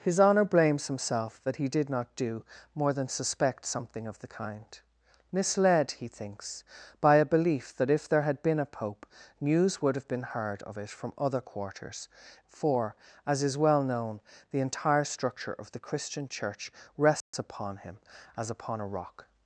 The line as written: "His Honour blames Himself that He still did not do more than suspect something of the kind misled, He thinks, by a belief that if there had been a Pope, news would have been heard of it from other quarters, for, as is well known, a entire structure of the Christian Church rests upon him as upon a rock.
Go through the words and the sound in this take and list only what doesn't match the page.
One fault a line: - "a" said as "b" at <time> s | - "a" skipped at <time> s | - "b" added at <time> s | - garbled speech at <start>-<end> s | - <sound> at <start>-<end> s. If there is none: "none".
- "still" skipped at 1.7 s
- "a" said as "the" at 14.5 s
- dropout at 17.2-17.3 s